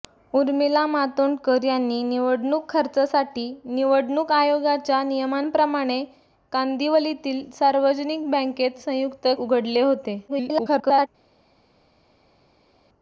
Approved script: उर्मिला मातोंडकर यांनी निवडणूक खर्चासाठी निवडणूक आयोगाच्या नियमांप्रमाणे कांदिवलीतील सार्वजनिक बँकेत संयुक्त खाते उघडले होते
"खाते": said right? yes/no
no